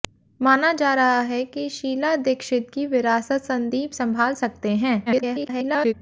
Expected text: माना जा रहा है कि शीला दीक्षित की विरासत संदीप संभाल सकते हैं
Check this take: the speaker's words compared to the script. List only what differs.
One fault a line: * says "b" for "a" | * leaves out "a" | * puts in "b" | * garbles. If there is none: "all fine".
* garbles